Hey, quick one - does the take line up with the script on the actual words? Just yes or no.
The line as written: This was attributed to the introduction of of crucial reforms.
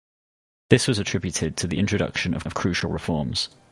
yes